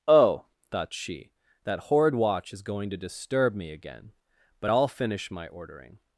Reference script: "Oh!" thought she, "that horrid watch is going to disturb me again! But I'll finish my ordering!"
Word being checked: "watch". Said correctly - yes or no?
yes